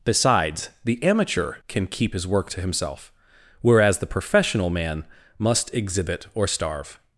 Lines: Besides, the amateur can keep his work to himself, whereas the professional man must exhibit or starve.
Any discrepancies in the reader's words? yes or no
no